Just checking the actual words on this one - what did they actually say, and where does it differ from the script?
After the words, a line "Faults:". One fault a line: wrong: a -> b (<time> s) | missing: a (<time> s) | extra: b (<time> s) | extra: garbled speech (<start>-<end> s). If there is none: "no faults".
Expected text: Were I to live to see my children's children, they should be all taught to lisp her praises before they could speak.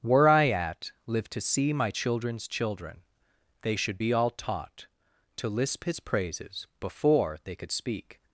Were I at live to see my children's children, they should be all taught to lisp his praises before they could speak.
Faults:
wrong: to -> at (0.5 s)
wrong: her -> his (5.8 s)